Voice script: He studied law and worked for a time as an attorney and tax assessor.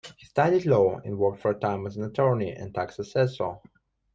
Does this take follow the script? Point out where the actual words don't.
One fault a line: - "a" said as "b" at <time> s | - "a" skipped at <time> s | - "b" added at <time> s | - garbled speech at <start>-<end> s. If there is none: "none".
none